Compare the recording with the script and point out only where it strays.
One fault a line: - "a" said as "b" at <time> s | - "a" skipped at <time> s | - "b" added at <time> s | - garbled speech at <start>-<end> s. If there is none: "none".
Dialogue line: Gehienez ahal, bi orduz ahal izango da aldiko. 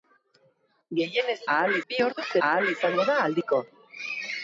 none